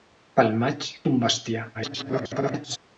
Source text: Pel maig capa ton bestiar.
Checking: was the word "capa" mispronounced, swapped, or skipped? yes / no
yes